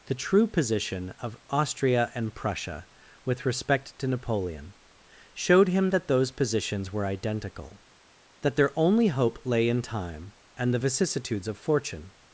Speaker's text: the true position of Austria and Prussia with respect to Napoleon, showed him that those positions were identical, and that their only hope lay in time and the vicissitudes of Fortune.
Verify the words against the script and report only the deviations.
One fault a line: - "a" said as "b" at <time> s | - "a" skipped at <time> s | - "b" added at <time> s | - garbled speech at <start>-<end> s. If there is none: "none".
- "and" skipped at 7.8 s